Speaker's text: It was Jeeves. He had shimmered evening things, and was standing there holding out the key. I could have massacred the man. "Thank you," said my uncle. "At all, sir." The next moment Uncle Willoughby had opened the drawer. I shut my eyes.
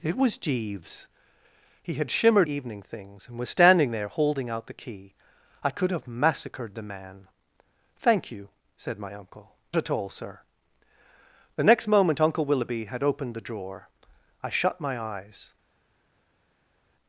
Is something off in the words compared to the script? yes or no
no